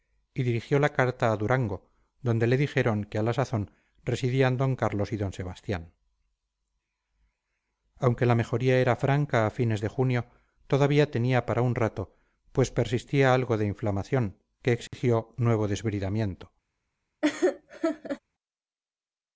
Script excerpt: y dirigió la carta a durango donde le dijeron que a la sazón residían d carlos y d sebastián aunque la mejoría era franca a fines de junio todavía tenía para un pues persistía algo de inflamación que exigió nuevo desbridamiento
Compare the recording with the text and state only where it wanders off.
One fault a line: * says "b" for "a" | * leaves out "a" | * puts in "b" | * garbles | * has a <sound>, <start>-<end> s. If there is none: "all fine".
* puts in "rato"
* has a dropout, 14.9-14.9 s
* has a laugh, 17.2-18.2 s